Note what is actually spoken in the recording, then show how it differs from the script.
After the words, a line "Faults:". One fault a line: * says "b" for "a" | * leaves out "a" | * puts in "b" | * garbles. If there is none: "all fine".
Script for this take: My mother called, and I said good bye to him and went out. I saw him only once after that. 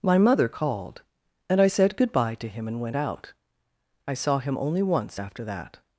My mother called, and I said good bye to him and went out. I saw him only once after that.
Faults:
all fine